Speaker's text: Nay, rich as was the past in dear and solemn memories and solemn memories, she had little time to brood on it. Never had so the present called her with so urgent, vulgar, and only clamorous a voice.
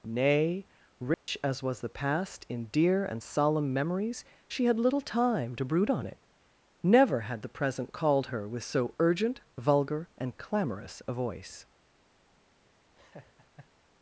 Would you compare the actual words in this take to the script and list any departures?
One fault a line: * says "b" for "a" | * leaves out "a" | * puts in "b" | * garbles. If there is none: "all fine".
* leaves out "and solemn memories"
* leaves out "so"
* leaves out "only"